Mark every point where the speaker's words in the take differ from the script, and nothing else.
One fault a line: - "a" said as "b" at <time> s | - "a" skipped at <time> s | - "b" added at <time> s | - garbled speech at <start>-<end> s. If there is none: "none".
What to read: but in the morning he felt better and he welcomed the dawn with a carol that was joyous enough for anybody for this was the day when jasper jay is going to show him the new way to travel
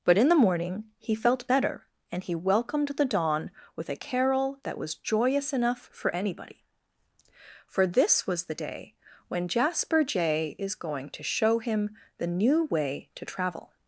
none